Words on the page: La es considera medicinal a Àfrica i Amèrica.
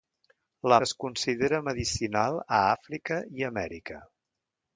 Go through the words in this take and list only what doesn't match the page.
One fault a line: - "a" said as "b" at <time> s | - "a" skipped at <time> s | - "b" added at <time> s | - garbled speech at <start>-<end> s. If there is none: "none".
none